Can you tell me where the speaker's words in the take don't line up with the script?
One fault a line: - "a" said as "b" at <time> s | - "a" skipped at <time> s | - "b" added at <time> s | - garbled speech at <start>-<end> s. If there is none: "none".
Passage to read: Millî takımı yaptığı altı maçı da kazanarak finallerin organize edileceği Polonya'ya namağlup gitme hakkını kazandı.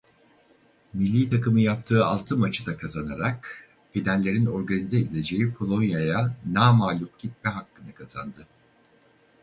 none